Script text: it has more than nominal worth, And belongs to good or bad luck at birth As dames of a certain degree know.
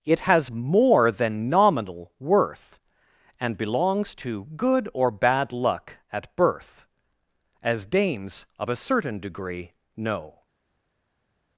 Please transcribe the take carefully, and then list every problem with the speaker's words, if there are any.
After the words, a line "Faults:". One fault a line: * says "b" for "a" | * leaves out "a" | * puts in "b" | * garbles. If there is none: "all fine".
it has more than nominal worth, And belongs to good or bad luck at birth As dames of a certain degree know.
Faults:
all fine